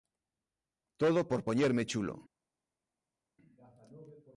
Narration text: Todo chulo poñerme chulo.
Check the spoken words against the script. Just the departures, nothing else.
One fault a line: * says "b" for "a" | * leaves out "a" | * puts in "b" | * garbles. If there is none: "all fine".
* says "por" for "chulo"